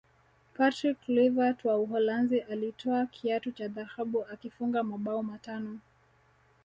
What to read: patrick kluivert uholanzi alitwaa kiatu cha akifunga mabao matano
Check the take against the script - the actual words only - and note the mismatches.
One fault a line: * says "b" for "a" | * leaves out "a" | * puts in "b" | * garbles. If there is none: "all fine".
* puts in "wa"
* puts in "dhahabu"